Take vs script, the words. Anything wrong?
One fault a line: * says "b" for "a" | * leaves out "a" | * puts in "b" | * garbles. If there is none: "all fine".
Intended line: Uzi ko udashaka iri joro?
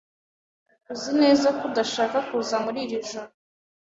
* puts in "neza"
* puts in "kuza muri"